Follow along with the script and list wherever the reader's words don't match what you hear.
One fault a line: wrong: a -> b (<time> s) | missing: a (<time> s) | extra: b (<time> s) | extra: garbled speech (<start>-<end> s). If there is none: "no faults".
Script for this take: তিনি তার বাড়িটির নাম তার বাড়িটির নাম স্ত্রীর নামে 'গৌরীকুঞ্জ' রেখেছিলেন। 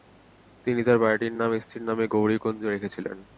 missing: তার বাড়িটির নাম (1.5 s)